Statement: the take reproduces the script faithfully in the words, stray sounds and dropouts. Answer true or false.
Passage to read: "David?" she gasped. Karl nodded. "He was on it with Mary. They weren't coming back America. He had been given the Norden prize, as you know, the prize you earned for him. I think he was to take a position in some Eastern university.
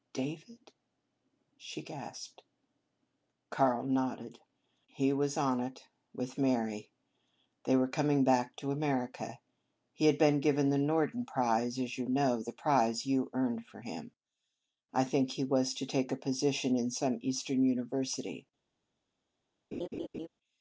false